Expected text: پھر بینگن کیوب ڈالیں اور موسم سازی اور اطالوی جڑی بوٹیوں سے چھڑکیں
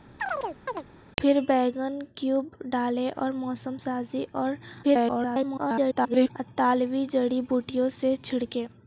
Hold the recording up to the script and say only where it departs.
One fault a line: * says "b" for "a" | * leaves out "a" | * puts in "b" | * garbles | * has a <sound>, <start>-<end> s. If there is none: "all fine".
* has a chirp, 0.2-0.8 s
* garbles